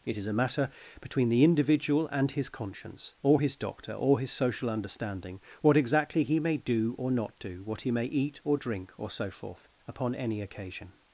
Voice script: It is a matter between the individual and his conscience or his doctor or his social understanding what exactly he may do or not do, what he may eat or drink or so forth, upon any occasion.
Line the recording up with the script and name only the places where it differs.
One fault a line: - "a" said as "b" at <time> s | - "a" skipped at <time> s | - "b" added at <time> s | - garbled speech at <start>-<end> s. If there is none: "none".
none